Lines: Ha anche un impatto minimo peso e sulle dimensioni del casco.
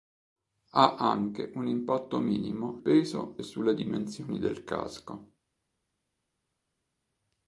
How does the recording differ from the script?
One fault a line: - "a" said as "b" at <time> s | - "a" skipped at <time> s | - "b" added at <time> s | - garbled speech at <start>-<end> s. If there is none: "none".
none